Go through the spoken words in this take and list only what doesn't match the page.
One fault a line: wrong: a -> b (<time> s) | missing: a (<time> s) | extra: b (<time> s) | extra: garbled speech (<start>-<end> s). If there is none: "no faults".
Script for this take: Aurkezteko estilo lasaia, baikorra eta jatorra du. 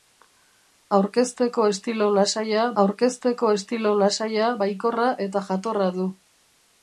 extra: aurkezteko estilo lasaia (2.8 s)